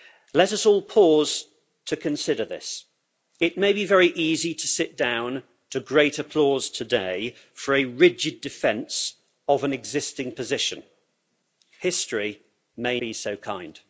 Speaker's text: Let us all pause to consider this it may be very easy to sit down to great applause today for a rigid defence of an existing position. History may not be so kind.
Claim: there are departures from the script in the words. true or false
true